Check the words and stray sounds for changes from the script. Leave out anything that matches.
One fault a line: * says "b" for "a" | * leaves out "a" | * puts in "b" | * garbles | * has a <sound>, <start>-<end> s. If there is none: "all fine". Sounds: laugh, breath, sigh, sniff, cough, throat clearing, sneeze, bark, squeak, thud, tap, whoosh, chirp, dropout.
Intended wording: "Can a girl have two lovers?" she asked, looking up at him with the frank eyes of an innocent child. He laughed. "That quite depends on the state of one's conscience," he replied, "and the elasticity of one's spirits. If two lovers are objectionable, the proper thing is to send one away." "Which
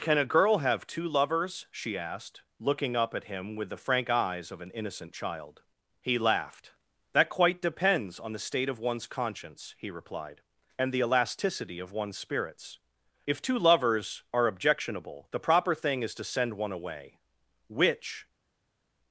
all fine